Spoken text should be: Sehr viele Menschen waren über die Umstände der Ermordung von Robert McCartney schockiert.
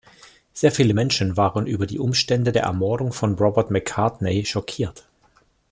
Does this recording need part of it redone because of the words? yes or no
no